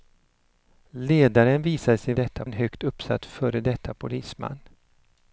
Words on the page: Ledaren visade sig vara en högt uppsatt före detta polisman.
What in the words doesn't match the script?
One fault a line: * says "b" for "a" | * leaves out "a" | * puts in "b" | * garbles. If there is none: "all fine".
* says "detta" for "vara"